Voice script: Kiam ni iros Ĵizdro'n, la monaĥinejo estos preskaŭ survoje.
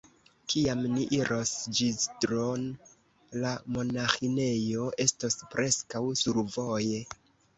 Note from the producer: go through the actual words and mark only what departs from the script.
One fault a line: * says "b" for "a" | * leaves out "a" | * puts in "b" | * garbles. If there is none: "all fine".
all fine